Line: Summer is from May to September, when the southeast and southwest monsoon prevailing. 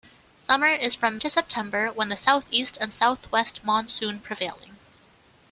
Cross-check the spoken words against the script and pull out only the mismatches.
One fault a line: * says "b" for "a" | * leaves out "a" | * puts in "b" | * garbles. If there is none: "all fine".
* leaves out "May"